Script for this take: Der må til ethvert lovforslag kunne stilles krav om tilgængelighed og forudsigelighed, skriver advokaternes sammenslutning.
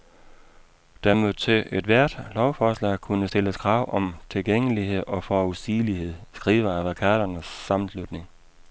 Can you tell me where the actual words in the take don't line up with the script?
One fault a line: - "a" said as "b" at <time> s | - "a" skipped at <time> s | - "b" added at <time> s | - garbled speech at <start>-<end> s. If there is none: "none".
none